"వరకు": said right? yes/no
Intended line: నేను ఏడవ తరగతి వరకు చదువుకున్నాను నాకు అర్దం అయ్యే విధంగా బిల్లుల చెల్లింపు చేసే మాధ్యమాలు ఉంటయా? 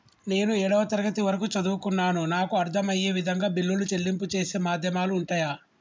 yes